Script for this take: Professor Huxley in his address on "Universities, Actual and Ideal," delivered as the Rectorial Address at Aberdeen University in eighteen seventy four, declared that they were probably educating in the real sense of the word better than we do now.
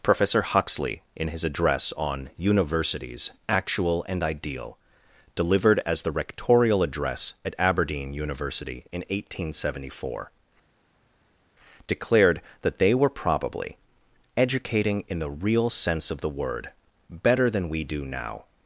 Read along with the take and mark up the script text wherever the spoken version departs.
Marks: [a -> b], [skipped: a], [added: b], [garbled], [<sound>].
Professor Huxley in his address on "Universities, Actual and Ideal," delivered as the Rectorial Address at Aberdeen University in eighteen seventy four, declared that they were probably educating in the real sense of the word better than we do now.